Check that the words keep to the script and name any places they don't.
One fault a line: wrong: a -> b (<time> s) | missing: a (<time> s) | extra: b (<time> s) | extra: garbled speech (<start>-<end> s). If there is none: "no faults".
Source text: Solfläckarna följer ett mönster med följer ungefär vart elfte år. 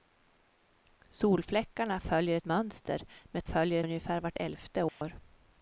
no faults